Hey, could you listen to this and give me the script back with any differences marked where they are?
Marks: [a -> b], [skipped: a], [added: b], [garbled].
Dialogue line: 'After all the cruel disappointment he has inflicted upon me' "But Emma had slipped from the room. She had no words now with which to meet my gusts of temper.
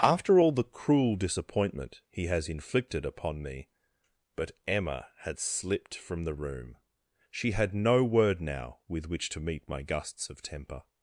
'After all the cruel disappointment he has inflicted upon me' "But Emma had slipped from the room. She had no [words -> word] now with which to meet my gusts of temper.